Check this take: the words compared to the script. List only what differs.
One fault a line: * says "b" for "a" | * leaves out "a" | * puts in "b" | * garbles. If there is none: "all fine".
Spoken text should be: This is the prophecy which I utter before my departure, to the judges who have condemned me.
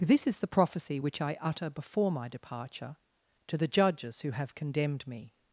all fine